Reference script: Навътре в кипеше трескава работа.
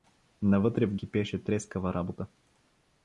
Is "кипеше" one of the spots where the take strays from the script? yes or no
no